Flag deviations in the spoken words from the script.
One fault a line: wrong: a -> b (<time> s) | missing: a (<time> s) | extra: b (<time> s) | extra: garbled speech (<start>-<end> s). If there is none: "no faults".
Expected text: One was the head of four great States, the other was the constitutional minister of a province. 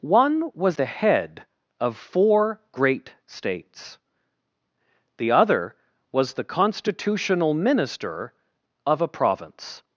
no faults